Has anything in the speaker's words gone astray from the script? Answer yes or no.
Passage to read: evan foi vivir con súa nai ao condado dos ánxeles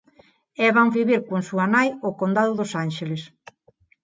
yes